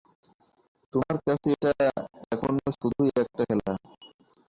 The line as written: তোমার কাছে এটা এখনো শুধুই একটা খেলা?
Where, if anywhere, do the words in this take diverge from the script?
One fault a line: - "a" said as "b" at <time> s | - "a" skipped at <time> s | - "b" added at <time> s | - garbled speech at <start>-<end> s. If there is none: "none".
none